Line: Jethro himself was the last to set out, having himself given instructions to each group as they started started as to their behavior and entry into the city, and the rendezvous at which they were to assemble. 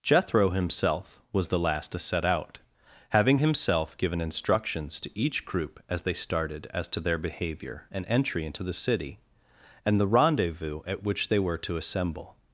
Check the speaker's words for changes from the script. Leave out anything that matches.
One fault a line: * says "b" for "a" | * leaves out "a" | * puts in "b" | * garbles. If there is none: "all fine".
* leaves out "started"